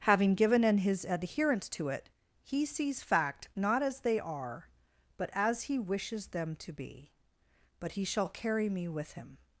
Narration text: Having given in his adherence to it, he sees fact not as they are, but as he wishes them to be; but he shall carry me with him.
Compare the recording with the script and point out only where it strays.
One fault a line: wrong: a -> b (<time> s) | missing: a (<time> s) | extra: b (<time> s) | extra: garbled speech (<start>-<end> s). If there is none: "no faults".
no faults